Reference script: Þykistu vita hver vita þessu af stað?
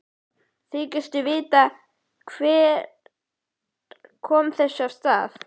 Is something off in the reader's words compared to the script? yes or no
yes